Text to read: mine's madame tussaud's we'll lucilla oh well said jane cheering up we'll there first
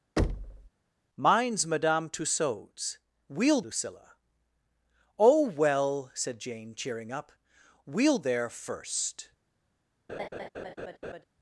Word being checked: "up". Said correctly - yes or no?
yes